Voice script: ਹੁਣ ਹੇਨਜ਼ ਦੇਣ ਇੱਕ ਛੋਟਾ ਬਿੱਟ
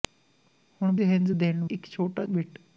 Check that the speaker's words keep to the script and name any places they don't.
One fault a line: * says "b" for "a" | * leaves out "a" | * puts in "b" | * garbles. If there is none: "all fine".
all fine